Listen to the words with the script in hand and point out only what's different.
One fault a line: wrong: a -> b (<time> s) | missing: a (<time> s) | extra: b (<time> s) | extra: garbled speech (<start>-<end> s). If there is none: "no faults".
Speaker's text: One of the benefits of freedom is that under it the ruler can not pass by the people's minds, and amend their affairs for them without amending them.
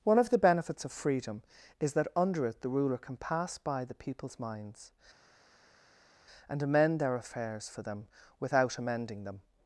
missing: not (3.2 s)